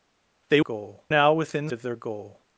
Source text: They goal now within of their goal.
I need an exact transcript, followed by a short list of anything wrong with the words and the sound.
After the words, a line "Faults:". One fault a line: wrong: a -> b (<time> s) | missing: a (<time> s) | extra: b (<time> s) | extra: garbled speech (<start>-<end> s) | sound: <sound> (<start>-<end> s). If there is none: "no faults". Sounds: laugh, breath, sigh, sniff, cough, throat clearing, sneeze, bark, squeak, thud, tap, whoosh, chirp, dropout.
They goal now within of their goal.
Faults:
no faults